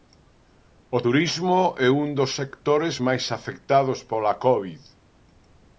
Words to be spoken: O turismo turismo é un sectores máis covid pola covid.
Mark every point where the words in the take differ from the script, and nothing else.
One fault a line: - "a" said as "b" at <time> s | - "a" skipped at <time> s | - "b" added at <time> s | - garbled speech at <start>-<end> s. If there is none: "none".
- "turismo" skipped at 1.6 s
- "dos" added at 2.2 s
- "covid" said as "afectados" at 3.4 s